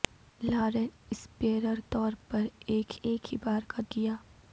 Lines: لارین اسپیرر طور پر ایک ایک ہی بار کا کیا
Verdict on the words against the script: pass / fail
pass